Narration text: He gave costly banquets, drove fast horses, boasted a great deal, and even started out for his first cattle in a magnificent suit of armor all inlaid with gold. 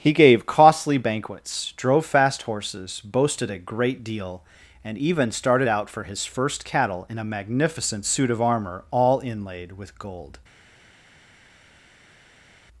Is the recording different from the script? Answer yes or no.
no